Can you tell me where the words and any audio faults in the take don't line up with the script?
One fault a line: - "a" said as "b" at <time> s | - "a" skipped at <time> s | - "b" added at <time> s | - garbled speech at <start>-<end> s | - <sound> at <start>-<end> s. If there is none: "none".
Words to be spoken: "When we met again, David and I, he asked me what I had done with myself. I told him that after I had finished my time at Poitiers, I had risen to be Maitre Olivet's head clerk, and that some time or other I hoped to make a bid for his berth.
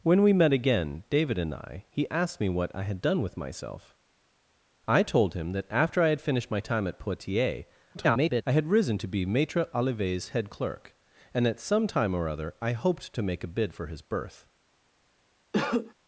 - garbled speech at 7.9-8.4 s
- cough at 15.5-15.9 s